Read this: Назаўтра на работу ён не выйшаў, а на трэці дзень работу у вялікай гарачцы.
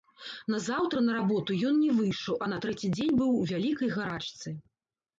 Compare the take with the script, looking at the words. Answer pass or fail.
fail